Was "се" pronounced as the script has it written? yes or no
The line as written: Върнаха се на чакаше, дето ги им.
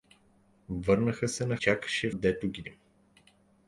yes